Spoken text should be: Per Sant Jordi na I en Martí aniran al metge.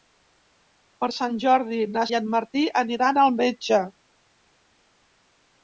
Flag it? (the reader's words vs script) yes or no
no